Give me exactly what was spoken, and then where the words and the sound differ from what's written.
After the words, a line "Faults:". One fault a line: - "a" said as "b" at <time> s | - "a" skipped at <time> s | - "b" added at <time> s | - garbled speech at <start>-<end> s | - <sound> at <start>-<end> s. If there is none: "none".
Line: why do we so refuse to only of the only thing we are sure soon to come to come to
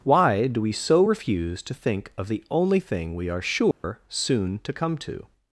why do we so refuse to think of the only thing we are sure soon to come to
Faults:
- "only" said as "think" at 1.7 s
- dropout at 3.7-3.8 s
- "come to" skipped at 5.3 s